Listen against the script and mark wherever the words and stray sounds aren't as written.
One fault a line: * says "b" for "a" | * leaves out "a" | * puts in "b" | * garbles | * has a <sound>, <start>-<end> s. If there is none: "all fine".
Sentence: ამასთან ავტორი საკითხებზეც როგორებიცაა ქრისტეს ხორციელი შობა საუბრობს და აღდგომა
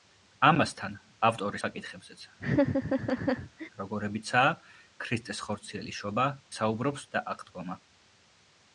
* has a laugh, 2.4-3.7 s